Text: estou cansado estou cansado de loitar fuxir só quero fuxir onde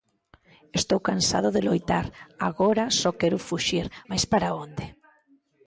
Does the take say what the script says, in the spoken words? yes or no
no